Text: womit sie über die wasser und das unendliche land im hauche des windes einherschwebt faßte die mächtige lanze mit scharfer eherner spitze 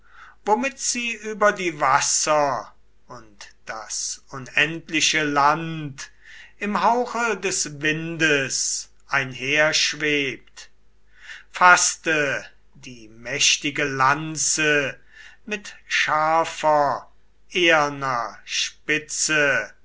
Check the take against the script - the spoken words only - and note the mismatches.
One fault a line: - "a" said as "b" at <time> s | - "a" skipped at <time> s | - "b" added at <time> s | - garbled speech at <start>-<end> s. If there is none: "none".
none